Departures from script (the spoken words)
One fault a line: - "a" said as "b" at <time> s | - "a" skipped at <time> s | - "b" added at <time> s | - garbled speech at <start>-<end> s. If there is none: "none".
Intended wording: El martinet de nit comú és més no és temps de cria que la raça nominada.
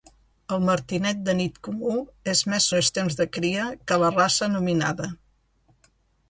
none